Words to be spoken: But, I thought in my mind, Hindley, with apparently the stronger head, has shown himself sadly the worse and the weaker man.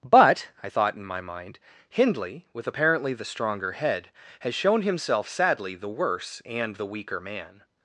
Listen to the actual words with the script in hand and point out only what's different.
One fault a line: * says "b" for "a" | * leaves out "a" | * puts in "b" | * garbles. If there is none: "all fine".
all fine